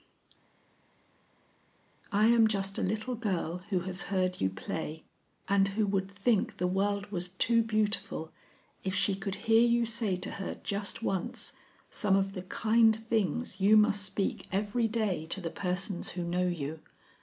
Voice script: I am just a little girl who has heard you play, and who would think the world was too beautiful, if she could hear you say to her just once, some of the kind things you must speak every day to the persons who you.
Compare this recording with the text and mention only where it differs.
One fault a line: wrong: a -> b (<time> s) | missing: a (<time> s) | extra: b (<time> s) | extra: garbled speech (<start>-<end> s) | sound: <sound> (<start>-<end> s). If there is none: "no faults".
extra: know (16.2 s)